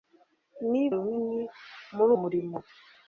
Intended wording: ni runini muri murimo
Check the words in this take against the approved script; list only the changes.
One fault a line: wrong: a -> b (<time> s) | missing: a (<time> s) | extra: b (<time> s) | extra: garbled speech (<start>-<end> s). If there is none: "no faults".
no faults